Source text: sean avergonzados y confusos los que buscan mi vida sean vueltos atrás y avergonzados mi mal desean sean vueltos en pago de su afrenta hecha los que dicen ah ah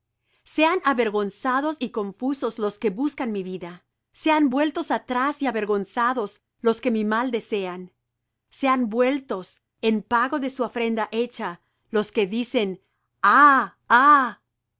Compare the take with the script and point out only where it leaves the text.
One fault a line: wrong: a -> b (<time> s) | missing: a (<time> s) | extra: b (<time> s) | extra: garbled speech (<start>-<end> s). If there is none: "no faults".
extra: los que (6.6 s)